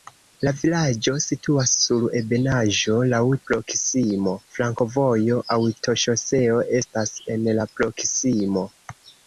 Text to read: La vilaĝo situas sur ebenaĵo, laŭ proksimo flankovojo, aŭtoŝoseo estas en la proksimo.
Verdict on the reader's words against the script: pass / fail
pass